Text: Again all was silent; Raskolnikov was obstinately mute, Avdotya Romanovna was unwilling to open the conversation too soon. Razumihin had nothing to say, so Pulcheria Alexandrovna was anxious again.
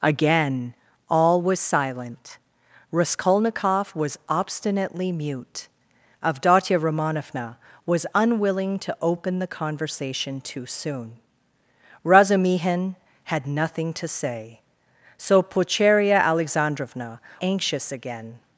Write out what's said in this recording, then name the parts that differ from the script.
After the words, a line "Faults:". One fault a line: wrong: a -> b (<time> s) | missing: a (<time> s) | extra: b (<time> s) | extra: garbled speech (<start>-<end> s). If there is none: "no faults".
Again all was silent; Raskolnikov was obstinately mute, Avdotya Romanovna was unwilling to open the conversation too soon. Razumihin had nothing to say, so Pulcheria Alexandrovna anxious again.
Faults:
missing: was (17.2 s)